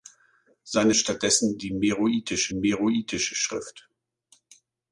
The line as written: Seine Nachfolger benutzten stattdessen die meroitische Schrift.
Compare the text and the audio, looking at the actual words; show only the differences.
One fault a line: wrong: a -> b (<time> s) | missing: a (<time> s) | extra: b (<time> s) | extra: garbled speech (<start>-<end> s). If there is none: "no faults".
missing: Nachfolger benutzten (0.9 s)
extra: meroitische (2.5 s)